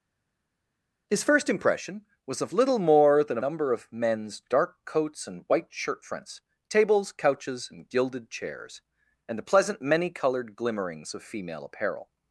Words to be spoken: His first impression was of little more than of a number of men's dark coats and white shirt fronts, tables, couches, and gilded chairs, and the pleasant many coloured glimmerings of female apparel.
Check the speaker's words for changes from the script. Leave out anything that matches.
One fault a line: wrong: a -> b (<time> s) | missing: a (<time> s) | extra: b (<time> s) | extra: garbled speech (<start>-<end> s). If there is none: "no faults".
missing: a (3.4 s)